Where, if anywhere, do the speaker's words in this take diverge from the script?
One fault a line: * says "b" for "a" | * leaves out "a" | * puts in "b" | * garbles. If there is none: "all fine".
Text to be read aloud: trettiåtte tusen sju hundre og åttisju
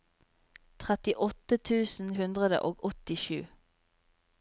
* leaves out "sju"